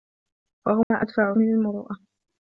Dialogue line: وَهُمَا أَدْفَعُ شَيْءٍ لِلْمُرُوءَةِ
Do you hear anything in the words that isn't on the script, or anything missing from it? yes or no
yes